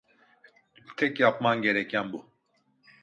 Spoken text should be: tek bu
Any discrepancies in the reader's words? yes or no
yes